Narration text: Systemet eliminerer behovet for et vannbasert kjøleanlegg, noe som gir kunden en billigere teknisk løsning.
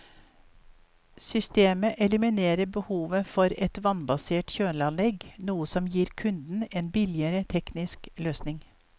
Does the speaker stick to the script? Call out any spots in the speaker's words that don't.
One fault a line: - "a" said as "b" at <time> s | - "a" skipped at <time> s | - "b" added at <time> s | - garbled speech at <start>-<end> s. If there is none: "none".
none